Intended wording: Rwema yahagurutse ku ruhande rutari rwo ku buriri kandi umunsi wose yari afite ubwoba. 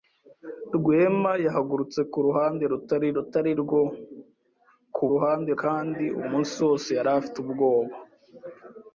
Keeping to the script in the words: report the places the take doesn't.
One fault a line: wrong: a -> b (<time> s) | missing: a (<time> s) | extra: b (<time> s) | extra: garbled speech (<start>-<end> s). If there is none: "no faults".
extra: rutari (3.2 s)
wrong: buriri -> ruhande (5.1 s)